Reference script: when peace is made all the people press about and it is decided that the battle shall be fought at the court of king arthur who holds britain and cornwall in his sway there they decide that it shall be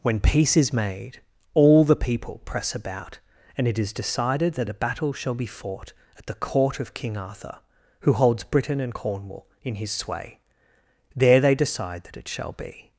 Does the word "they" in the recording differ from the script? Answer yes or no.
no